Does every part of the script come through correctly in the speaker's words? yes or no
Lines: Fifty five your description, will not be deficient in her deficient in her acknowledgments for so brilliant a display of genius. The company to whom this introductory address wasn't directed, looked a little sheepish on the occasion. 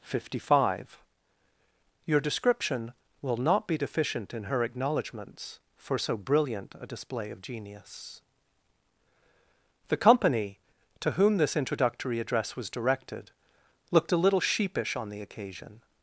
no